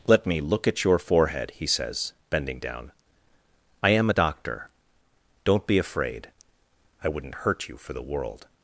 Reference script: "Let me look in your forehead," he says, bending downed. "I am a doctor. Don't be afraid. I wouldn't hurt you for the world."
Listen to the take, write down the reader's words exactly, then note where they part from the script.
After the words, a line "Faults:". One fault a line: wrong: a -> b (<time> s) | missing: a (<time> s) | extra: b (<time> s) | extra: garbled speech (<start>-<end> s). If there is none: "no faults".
"Let me look at your forehead," he says, bending down. "I am a doctor. Don't be afraid. I wouldn't hurt you for the world."
Faults:
wrong: in -> at (0.7 s)
wrong: downed -> down (2.6 s)